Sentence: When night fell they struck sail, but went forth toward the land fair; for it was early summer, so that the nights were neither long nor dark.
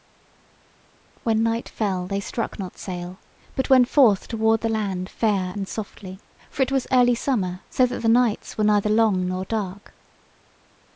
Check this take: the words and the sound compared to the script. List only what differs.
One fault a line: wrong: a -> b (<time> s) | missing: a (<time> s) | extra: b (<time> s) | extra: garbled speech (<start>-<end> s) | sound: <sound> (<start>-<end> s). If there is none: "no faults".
extra: not (2.6 s)
extra: and softly (5.5 s)